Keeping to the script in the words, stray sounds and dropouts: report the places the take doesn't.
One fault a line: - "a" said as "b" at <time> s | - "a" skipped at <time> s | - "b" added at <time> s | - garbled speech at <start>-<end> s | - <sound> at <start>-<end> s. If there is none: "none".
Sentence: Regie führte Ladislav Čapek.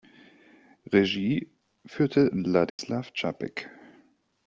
- dropout at 2.7-2.8 s